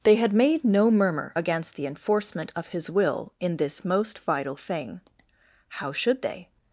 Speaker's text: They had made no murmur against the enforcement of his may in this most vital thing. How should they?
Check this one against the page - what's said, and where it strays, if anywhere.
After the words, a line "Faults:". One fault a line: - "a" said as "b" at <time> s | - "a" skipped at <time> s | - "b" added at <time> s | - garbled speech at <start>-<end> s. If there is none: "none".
They had made no murmur against the enforcement of his will in this most vital thing. How should they?
Faults:
- "may" said as "will" at 2.9 s